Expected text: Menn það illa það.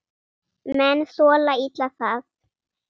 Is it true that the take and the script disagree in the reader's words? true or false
true